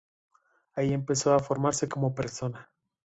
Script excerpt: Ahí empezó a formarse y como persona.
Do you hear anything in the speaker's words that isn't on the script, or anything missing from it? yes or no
no